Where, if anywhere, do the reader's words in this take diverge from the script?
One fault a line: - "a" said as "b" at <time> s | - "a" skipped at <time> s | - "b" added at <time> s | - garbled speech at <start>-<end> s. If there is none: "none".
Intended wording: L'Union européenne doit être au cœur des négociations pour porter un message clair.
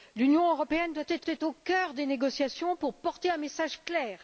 - "être" added at 1.2 s